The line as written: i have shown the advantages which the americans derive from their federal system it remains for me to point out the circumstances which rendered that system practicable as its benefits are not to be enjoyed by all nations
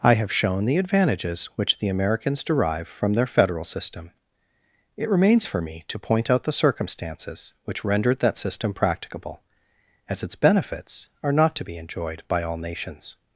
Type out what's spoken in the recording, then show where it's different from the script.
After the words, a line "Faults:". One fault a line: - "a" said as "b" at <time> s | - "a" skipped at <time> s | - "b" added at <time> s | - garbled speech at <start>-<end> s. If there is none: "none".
i have shown the advantages which the americans derive from their federal system it remains for me to point out the circumstances which rendered that system practicable as its benefits are not to be enjoyed by all nations
Faults:
none